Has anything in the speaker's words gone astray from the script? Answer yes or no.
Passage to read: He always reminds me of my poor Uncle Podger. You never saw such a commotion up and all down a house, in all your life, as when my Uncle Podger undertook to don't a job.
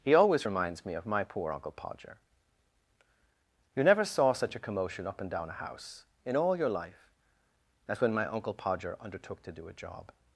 yes